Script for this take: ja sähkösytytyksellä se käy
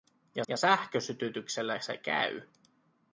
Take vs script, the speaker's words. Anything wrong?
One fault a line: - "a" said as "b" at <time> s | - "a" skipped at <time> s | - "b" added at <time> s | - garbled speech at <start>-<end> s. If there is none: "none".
- "ja" added at 0.5 s